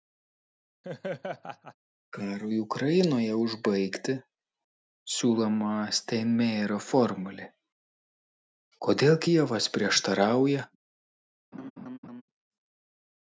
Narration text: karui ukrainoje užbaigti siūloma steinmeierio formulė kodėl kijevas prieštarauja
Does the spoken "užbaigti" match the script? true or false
true